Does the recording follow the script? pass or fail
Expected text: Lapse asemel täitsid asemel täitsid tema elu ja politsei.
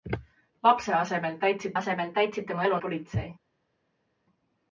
pass